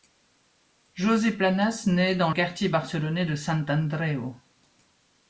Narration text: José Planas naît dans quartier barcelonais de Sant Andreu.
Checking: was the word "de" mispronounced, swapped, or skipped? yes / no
no